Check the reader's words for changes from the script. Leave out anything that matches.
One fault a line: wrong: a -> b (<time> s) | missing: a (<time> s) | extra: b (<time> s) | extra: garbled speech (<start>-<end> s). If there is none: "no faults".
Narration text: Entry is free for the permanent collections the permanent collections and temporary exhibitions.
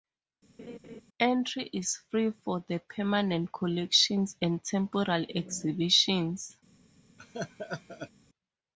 missing: the permanent collections (4.4 s)